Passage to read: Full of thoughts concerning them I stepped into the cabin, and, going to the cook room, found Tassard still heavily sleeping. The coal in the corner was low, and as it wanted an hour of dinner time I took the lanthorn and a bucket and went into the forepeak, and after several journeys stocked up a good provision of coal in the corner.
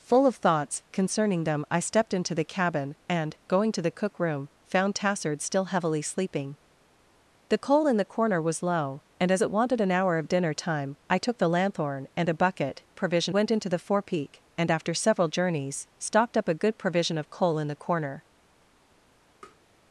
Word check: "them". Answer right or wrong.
right